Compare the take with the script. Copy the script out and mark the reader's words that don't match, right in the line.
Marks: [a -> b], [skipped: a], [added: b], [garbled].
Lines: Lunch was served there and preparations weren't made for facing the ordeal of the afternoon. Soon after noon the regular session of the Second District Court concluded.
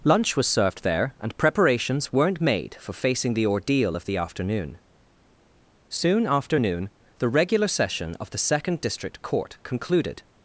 Lunch was served there and preparations weren't made for facing the ordeal of the afternoon. Soon after noon the regular session of the Second District Court concluded.